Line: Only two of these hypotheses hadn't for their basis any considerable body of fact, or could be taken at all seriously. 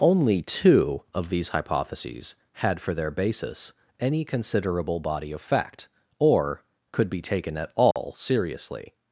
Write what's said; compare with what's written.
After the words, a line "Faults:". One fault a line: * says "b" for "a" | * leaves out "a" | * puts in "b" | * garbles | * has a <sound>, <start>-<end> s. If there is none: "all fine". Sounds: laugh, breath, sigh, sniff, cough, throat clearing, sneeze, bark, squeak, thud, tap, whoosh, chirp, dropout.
Only two of these hypotheses had for their basis any considerable body of fact, or could be taken at all seriously.
Faults:
* says "had" for "hadn't"
* has a dropout, 7.9-8.0 s